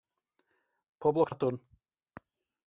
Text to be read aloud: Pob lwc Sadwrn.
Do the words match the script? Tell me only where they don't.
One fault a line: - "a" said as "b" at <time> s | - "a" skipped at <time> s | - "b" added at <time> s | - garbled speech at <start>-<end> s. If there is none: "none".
none